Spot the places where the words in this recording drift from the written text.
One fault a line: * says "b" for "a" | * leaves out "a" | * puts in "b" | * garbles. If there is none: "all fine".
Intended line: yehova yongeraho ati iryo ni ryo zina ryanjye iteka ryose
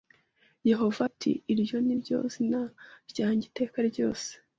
* leaves out "yongeraho"